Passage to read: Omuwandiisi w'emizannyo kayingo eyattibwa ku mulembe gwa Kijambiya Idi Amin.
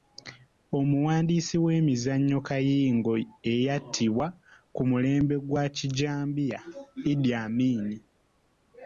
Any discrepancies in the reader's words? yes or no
no